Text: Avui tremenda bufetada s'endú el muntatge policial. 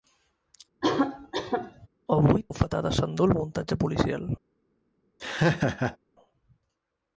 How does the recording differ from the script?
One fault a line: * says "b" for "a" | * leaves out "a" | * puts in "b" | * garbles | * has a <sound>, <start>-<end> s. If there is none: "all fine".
* has a cough, 0.8-1.9 s
* leaves out "tremenda"
* has a laugh, 5.2-6.0 s